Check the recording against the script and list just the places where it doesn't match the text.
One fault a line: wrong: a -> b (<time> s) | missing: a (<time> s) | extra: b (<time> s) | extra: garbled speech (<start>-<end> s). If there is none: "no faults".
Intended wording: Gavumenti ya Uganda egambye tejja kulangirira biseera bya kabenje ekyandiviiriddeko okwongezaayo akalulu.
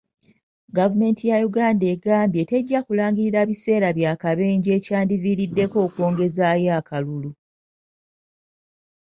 no faults